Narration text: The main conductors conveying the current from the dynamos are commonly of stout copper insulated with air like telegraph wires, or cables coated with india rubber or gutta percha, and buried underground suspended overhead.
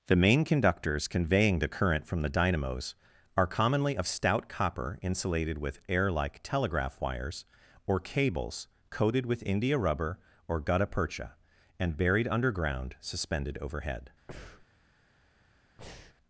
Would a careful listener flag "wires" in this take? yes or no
no